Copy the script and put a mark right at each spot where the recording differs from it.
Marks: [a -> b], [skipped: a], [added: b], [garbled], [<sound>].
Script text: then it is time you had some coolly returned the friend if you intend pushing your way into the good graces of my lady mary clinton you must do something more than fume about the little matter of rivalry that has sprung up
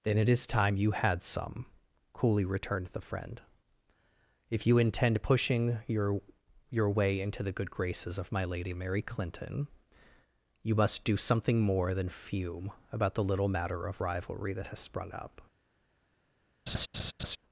then it is time you had some coolly returned the friend if you intend pushing your [added: your] way into the good graces of my lady mary clinton you must do something more than fume about the little matter of rivalry that has sprung up [laugh]